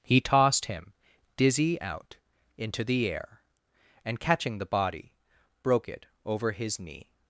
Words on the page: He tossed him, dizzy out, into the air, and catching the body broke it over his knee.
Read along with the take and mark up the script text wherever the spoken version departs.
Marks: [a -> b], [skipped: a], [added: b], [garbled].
He tossed him, dizzy out, into the air, and catching the body broke it over his knee.